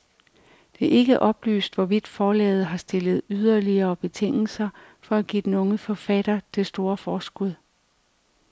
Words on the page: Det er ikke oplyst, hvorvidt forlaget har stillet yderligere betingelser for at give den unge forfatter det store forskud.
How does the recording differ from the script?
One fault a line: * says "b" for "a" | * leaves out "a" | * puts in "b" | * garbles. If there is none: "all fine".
all fine